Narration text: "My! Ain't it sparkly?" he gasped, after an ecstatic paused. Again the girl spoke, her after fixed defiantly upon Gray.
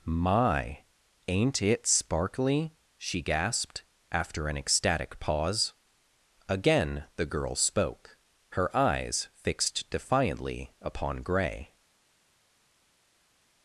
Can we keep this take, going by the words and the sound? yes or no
no